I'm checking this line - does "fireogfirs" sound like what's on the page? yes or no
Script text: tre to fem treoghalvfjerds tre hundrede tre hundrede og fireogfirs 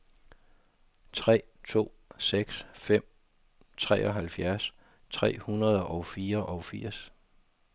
yes